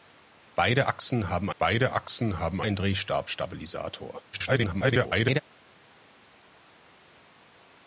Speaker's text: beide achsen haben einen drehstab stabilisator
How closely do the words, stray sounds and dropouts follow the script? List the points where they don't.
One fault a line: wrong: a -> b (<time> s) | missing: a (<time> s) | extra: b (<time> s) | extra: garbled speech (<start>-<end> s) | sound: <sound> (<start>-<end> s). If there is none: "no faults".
extra: beide achsen haben (1.6 s)
extra: garbled speech (4.3-5.4 s)